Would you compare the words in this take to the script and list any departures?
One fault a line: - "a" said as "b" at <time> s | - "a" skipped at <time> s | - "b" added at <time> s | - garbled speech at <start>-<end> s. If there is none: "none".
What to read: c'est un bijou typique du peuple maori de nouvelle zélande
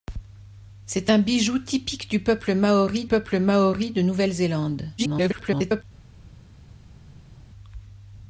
- "peuple maori" added at 3.1 s
- garbled speech at 5.0-5.8 s